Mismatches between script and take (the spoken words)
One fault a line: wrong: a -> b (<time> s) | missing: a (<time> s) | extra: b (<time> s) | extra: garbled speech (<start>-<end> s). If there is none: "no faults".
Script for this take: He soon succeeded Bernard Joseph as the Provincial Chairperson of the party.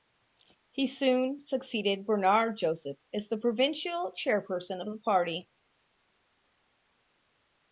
no faults